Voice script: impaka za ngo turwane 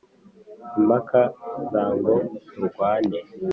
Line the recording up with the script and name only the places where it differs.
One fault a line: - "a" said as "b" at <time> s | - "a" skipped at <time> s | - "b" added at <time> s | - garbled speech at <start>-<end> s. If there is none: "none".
none